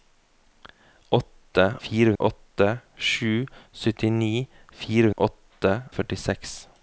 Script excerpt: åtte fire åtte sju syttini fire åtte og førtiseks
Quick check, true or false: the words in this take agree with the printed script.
true